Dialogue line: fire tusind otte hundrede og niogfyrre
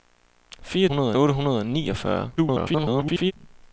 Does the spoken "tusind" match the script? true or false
false